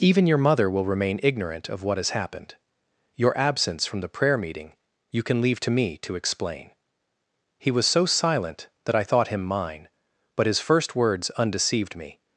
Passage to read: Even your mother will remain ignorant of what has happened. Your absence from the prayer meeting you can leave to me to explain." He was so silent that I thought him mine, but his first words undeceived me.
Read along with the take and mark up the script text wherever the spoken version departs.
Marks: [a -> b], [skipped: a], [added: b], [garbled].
Even your mother will remain ignorant of what has happened. Your absence from the prayer meeting you can leave to me to explain." He was so silent that I thought him mine, but his first words undeceived me.